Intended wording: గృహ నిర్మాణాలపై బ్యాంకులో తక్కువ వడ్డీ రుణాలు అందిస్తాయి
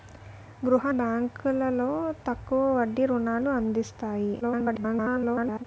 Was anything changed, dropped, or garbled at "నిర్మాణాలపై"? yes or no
yes